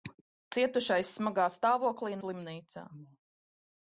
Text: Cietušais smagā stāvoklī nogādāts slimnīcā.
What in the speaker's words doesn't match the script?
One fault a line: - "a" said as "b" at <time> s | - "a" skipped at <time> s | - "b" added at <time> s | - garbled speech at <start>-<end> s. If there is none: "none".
- "nogādāts" skipped at 2.2 s